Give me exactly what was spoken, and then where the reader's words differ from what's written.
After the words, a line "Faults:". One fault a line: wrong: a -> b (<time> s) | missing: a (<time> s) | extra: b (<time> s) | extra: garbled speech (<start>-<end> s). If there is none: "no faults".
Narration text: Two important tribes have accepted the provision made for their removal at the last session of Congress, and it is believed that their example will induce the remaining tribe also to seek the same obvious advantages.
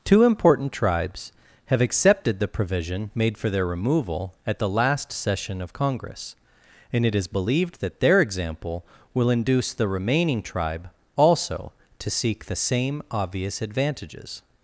Two important tribes have accepted the provision made for their removal at the last session of Congress, and it is believed that their example will induce the remaining tribe also to seek the same obvious advantages.
Faults:
no faults